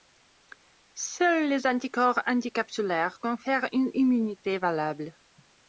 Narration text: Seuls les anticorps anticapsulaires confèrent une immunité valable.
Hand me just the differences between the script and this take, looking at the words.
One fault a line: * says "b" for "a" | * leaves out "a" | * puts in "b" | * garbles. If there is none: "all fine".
all fine